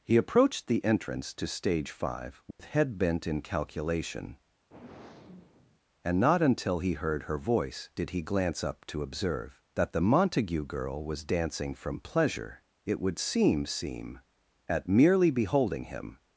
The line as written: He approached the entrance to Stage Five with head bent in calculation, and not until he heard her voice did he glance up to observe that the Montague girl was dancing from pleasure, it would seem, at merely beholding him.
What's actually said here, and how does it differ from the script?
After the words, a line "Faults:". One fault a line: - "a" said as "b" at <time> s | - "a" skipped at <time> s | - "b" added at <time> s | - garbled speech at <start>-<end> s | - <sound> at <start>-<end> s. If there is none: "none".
He approached the entrance to Stage Five with head bent in calculation, and not until he heard her voice did he glance up to observe that the Montague girl was dancing from pleasure, it would seem seem, at merely beholding him.
Faults:
- dropout at 2.5-2.6 s
- sigh at 4.7-5.8 s
- "seem" added at 13.7 s